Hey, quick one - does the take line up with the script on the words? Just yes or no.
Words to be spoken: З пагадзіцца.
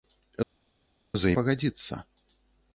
yes